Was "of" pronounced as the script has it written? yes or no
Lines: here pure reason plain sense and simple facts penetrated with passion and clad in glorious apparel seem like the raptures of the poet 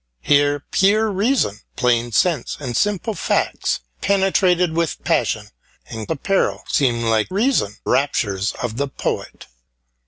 yes